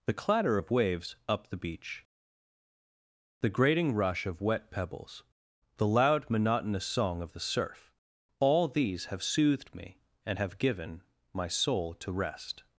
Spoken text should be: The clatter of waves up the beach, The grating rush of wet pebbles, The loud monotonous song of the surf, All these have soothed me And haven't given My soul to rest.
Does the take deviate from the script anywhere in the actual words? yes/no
yes